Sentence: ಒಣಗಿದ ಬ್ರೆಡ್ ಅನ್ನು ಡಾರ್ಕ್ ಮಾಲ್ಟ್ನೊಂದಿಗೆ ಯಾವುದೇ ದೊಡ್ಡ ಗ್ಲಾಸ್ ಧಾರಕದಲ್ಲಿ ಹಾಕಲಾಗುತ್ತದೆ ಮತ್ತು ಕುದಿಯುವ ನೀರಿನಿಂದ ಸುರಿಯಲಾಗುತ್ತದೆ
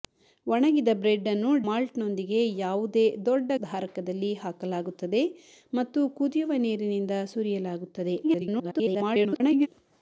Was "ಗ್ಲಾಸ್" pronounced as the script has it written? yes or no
no